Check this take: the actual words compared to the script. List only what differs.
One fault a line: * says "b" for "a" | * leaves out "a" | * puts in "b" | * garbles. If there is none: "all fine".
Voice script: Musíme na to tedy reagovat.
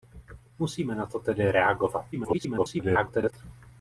* garbles